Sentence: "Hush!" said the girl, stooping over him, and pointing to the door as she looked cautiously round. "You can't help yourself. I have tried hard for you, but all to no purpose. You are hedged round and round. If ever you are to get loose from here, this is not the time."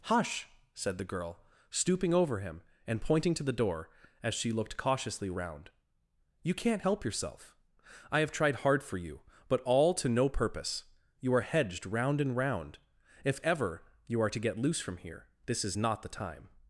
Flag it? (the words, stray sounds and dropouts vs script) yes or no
no